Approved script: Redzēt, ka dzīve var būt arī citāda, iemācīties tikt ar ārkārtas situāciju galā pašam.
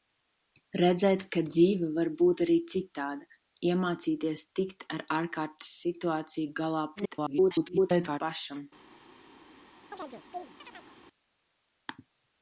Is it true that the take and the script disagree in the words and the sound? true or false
true